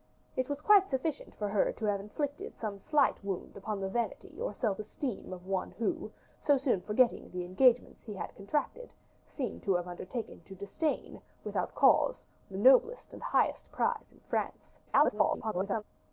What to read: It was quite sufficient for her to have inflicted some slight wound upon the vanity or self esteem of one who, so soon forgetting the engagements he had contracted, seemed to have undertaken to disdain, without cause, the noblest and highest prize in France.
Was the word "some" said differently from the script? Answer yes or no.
no